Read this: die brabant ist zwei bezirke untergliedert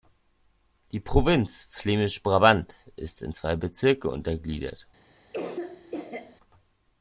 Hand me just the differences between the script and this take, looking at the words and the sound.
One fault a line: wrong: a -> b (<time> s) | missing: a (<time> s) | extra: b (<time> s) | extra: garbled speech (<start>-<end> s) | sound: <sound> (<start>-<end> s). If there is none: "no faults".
extra: provinz flämisch (1.0 s)
extra: in (3.2 s)
sound: cough (5.3-6.4 s)